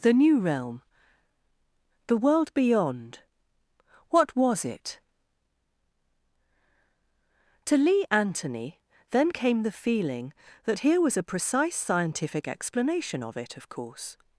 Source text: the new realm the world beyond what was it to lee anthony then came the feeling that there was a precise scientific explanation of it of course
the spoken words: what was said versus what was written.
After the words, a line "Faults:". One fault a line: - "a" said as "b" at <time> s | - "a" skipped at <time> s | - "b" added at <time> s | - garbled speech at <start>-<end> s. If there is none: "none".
the new realm the world beyond what was it to lee anthony then came the feeling that here was a precise scientific explanation of it of course
Faults:
- "there" said as "here" at 10.8 s